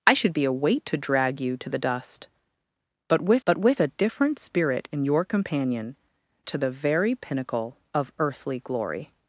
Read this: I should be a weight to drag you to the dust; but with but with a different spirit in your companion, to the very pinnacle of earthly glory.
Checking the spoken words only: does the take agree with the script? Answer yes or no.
yes